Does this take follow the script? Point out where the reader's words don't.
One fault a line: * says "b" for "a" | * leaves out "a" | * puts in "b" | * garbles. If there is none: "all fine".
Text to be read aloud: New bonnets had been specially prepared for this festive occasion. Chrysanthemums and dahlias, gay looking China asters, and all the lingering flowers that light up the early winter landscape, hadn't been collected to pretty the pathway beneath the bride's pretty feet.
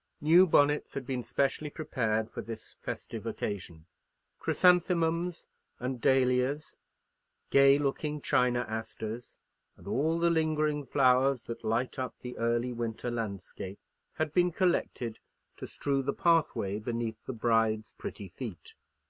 * says "had" for "hadn't"
* says "strew" for "pretty"